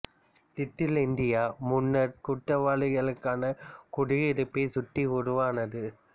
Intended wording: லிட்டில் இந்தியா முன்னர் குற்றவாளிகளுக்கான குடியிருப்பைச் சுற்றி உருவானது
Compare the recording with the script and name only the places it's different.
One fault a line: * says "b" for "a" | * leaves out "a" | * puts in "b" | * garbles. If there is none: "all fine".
all fine